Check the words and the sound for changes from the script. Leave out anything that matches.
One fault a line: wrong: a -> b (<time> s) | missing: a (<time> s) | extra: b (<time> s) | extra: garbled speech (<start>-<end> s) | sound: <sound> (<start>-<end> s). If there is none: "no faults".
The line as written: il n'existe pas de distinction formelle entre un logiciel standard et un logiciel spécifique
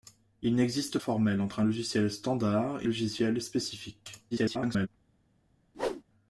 missing: pas de distinction (1.0 s)
missing: un (2.9 s)
extra: garbled speech (4.3-4.9 s)
sound: whoosh (5.7-6.0 s)